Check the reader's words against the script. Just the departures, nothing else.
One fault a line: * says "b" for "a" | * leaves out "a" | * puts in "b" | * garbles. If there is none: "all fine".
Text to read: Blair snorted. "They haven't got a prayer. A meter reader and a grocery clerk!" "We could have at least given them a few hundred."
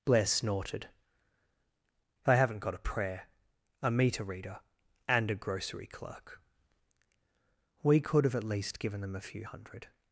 all fine